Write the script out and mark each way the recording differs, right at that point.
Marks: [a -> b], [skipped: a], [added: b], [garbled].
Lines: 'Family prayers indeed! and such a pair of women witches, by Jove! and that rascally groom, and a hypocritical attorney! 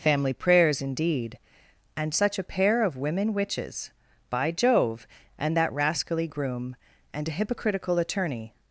'Family prayers indeed! and such a pair of women witches, by Jove! and that rascally groom, and a hypocritical attorney!